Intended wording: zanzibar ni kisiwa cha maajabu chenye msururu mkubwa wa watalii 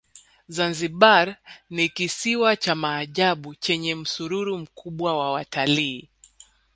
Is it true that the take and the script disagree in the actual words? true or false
false